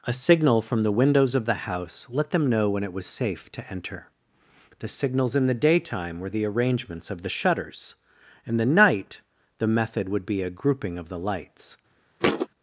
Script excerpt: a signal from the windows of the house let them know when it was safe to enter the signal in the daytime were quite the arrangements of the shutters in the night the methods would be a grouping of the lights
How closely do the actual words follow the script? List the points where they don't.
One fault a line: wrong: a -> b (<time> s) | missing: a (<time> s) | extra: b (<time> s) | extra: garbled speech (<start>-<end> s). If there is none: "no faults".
wrong: signal -> signals (4.9 s)
missing: quite (6.3 s)
wrong: methods -> method (9.7 s)